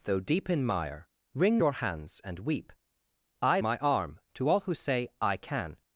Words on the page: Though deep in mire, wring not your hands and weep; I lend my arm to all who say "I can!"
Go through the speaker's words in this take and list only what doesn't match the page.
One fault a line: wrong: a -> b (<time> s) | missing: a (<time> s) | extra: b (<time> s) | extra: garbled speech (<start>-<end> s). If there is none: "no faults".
missing: not (1.6 s)
missing: lend (3.6 s)